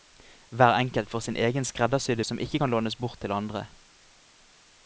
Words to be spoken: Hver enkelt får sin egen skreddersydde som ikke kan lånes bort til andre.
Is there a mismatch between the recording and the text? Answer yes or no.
no